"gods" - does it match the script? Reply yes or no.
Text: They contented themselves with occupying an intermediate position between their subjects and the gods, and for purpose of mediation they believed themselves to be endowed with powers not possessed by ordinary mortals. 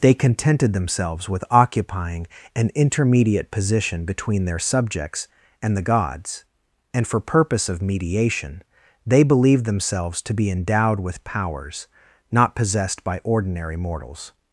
yes